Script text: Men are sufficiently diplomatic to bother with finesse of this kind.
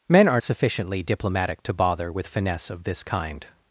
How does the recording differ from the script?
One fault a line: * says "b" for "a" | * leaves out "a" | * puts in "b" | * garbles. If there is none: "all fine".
all fine